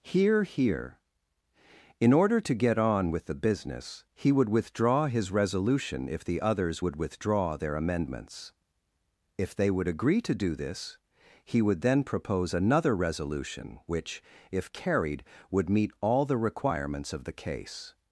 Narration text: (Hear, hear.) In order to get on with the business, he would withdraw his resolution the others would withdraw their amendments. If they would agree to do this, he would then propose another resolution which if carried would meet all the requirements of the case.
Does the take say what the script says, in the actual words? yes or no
no